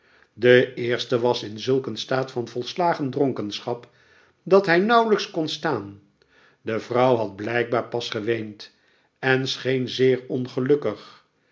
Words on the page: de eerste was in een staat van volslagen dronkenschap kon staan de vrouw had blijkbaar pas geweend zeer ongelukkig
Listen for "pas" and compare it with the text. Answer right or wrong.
right